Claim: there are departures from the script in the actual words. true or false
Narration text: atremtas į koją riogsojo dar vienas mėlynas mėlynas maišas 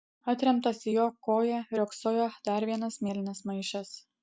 true